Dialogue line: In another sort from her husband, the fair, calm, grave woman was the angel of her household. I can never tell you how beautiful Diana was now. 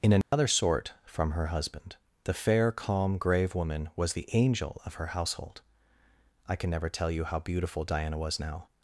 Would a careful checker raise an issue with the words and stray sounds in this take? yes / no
yes